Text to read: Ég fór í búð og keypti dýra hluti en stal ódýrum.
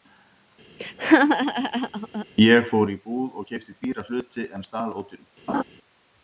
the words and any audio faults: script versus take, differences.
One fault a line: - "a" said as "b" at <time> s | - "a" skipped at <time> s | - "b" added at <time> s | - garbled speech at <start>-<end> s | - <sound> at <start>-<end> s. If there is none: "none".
- laugh at 0.8-2.3 s
- laugh at 5.5-5.6 s